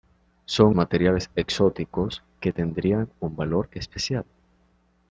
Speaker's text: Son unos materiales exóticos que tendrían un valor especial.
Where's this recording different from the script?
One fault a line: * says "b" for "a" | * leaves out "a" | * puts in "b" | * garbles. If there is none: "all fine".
* leaves out "unos"